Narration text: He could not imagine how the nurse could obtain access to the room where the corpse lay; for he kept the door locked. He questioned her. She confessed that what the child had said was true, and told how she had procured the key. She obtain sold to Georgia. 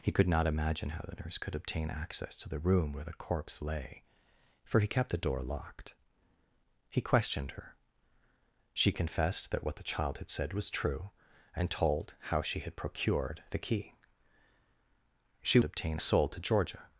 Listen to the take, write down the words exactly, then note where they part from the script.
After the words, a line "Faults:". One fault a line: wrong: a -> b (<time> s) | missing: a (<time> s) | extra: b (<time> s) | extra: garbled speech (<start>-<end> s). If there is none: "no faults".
He could not imagine how the nurse could obtain access to the room where the corpse lay; for he kept the door locked. He questioned her. She confessed that what the child had said was true, and told how she had procured the key. She obtain sold to Georgia.
Faults:
no faults